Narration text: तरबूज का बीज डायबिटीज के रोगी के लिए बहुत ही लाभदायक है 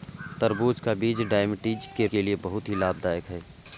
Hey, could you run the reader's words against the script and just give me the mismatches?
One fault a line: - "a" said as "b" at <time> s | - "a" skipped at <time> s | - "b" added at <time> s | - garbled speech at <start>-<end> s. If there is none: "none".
- "रोगी" skipped at 2.1 s